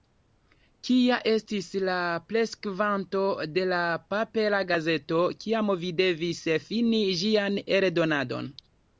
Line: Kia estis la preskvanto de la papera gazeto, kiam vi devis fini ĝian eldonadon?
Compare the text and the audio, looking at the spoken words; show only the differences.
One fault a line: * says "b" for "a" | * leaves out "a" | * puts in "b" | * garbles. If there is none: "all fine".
all fine